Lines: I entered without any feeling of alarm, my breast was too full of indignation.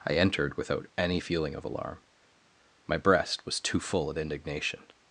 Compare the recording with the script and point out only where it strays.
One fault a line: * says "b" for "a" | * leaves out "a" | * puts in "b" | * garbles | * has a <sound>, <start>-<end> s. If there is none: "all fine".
all fine